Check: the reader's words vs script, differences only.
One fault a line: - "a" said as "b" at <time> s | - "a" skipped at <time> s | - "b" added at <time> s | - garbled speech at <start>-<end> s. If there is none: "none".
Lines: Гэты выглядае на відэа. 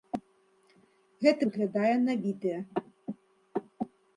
none